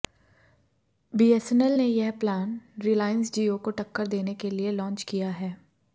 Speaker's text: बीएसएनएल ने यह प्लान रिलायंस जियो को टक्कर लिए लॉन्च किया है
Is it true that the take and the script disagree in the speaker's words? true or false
true